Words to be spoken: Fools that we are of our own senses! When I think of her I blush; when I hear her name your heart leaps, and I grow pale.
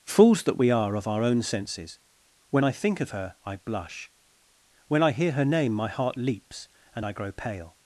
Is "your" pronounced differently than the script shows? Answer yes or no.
yes